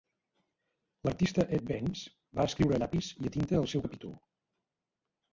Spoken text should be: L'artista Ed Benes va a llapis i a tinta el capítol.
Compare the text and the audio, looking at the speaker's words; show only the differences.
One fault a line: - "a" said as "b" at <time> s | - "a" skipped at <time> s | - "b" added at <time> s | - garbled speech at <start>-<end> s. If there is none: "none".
- "escriure" added at 2.5 s
- "seu" added at 3.7 s